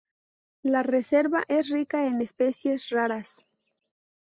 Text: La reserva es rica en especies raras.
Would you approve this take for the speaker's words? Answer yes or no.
yes